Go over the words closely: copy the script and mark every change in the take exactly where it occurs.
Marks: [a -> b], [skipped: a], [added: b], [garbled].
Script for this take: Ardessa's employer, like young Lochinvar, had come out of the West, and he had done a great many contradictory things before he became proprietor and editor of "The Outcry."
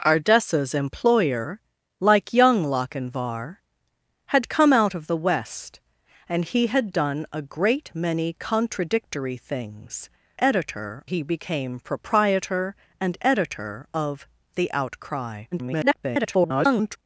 Ardessa's employer, like young Lochinvar, had come out of the West, and he had done a great many contradictory things [before -> editor] he became proprietor and editor of "The Outcry." [garbled]